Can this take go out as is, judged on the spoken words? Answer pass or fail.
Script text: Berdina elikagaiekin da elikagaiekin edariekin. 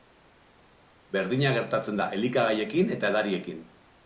fail